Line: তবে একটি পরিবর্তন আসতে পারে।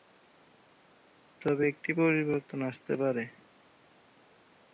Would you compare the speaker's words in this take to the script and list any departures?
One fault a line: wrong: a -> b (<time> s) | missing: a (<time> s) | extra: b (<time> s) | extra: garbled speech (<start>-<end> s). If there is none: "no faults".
no faults